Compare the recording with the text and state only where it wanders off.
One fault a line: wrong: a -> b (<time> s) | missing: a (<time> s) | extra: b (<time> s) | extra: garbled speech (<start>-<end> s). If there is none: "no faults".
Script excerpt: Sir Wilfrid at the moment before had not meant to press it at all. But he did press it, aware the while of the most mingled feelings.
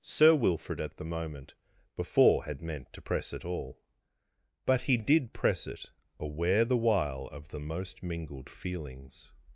missing: not (2.6 s)
missing: at (3.5 s)